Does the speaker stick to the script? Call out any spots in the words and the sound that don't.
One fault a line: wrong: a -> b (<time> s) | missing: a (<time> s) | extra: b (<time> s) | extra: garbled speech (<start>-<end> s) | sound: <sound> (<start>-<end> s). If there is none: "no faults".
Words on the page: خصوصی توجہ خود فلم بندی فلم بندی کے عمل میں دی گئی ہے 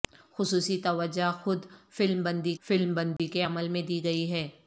sound: dropout (3.2-3.2 s)